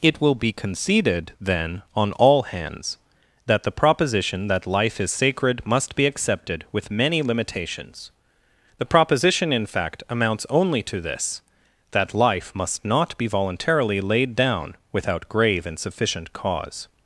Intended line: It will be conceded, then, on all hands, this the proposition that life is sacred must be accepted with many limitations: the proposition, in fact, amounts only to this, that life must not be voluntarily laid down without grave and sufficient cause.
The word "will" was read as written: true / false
true